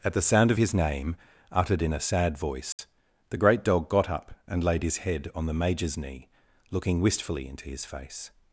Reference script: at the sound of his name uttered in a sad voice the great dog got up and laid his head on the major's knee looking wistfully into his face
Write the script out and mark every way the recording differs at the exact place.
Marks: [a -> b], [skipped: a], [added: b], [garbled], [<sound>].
at the sound of his name uttered in a sad voice [dropout] the great dog got up and laid his head on the major's knee looking wistfully into his face